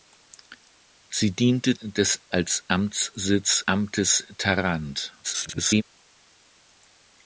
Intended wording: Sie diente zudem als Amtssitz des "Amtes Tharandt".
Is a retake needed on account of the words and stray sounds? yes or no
yes